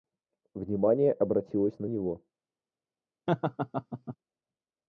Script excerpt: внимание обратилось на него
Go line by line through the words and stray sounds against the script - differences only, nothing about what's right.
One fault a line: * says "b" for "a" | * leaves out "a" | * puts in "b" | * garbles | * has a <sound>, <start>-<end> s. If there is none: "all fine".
* has a laugh, 3.3-4.2 s